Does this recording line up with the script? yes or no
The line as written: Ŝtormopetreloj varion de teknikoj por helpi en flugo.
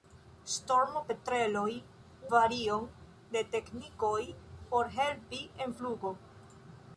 yes